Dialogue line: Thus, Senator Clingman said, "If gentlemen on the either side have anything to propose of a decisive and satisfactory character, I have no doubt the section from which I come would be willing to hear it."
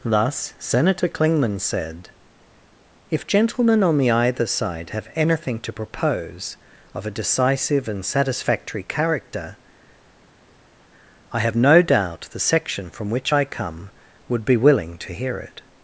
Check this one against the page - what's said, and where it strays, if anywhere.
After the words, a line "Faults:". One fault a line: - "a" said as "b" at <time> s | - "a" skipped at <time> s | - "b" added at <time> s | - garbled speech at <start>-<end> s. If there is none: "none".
Thus, Senator Clingman said, "If gentlemen on the either side have anything to propose of a decisive and satisfactory character, I have no doubt the section from which I come would be willing to hear it."
Faults:
none